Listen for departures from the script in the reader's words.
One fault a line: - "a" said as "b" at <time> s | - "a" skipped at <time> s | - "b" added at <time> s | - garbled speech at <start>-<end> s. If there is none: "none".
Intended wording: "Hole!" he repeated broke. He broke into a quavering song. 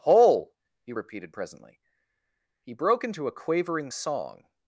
- "broke" said as "presently" at 1.3 s